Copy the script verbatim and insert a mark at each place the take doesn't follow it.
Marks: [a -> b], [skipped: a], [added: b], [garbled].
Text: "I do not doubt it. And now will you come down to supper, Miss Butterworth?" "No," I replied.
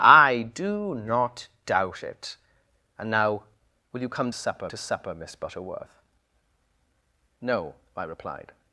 "I do not doubt it. And now will you come [down -> supper] to supper, Miss Butterworth?" "No," I replied.